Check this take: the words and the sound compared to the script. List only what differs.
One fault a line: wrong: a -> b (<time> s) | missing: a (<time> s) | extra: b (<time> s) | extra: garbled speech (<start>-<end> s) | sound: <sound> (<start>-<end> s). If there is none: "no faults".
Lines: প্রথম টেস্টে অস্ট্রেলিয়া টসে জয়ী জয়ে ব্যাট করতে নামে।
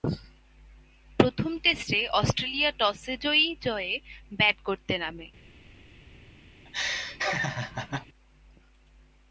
sound: laugh (6.6-8.1 s)